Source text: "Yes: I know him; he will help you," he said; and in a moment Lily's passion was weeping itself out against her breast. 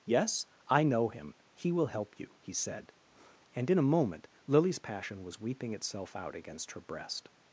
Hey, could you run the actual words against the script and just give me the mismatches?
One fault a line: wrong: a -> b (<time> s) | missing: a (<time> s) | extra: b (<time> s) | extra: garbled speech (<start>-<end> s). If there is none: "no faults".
no faults